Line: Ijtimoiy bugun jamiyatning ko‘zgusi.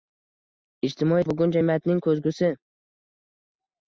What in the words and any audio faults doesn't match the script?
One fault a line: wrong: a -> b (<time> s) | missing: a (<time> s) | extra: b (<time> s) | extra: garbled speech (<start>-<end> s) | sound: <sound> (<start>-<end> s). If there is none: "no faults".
no faults